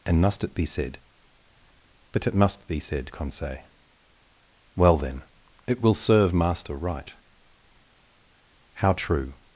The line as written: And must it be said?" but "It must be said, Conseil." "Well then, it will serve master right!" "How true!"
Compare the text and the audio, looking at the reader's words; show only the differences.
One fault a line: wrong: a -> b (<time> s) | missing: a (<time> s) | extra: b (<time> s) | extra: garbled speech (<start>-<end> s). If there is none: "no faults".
no faults